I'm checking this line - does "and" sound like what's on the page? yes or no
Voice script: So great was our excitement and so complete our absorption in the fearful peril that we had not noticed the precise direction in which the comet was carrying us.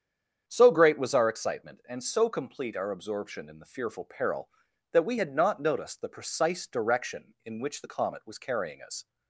yes